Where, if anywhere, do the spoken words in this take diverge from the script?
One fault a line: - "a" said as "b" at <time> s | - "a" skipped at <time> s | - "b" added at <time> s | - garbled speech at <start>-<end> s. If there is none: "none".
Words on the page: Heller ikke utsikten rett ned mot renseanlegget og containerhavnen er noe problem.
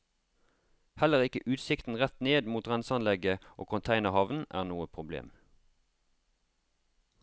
none